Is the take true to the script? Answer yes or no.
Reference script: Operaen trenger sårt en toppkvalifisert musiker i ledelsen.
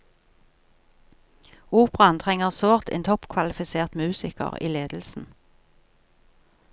yes